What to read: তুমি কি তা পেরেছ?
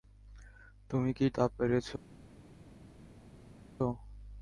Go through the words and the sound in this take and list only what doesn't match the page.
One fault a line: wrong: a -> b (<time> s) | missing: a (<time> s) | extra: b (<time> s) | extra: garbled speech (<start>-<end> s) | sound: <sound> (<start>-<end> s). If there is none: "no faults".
no faults